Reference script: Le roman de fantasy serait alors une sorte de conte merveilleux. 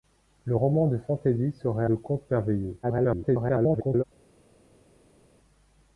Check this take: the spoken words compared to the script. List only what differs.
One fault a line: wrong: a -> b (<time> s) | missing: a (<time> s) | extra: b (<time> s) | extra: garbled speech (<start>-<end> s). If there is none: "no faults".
missing: alors une sorte (1.8 s)
extra: garbled speech (2.8-4.0 s)